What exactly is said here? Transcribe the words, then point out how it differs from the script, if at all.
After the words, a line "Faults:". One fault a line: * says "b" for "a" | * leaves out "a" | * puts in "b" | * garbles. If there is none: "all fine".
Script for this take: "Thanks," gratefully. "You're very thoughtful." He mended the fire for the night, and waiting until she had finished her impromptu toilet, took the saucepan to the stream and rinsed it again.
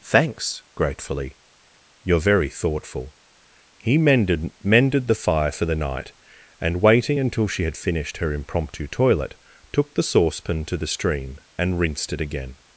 "Thanks," gratefully. "You're very thoughtful." He mended mended the fire for the night, and waiting until she had finished her impromptu toilet, took the saucepan to the stream and rinsed it again.
Faults:
* puts in "mended"